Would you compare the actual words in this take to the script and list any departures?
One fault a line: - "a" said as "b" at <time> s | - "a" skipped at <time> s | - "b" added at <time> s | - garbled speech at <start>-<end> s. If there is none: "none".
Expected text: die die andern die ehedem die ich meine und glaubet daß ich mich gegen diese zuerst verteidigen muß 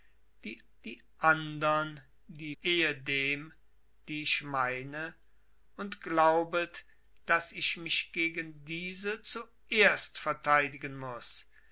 none